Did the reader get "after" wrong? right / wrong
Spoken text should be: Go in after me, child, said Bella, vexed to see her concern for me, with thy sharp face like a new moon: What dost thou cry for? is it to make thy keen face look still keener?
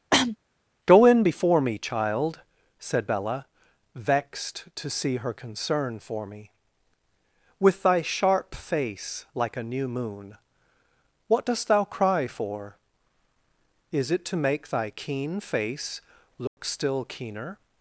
wrong